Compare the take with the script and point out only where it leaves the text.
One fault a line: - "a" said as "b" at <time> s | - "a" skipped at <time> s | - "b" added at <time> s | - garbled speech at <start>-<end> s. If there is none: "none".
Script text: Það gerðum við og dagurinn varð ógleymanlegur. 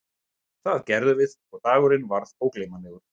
none